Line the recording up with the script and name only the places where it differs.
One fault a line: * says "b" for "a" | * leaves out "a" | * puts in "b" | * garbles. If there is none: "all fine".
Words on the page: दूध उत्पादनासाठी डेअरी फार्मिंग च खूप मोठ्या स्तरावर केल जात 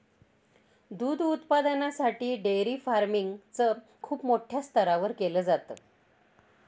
all fine